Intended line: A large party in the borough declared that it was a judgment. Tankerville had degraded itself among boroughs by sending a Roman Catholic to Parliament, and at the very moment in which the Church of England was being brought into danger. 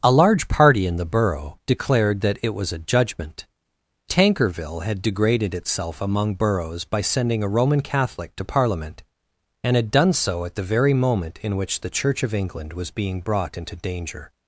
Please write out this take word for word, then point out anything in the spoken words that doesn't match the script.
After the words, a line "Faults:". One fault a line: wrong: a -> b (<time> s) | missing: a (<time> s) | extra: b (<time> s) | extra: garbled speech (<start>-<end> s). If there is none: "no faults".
A large party in the borough declared that it was a judgment. Tankerville had degraded itself among boroughs by sending a Roman Catholic to Parliament, and had done so at the very moment in which the Church of England was being brought into danger.
Faults:
extra: had done so (9.8 s)